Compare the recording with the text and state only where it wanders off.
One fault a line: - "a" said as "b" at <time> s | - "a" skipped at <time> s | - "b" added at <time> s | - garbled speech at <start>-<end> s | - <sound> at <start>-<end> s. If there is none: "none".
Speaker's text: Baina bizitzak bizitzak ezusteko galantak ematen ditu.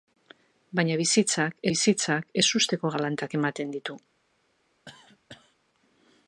- cough at 4.9-5.6 s